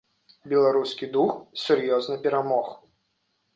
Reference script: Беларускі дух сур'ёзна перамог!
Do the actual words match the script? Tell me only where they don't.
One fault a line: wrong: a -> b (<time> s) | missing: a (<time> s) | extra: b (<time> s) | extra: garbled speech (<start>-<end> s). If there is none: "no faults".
no faults